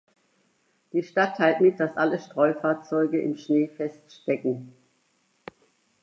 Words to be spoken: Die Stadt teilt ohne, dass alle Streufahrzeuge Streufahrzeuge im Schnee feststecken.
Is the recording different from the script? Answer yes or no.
yes